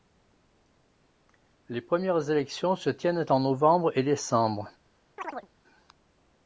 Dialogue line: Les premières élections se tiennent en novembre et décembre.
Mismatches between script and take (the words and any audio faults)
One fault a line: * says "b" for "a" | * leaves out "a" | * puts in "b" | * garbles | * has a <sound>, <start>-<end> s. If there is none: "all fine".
* has a chirp, 5.2-5.5 s